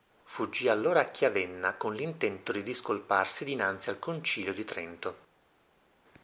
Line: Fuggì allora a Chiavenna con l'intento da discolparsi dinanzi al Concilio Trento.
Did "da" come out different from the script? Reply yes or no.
yes